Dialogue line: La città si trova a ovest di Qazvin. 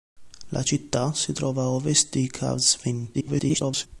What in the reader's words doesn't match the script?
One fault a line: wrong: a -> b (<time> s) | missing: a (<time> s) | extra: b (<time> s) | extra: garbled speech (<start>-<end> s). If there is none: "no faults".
extra: garbled speech (3.1-3.9 s)